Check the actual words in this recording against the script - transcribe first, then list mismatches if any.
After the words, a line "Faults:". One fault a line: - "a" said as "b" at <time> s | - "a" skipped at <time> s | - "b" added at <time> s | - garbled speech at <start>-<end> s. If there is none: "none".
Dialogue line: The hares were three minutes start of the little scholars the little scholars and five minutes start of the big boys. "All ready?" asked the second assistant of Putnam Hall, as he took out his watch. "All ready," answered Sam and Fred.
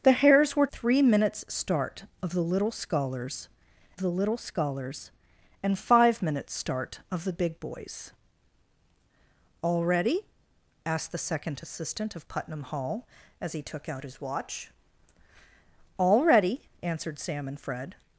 The hares were three minutes start of the little scholars the little scholars and five minutes start of the big boys. "All ready?" asked the second assistant of Putnam Hall, as he took out his watch. "All ready," answered Sam and Fred.
Faults:
none